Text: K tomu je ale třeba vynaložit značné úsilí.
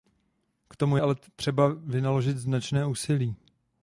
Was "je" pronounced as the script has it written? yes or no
no